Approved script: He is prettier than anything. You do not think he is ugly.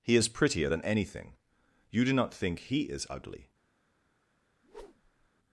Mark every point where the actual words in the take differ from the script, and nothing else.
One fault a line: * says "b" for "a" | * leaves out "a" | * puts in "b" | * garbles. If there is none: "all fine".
all fine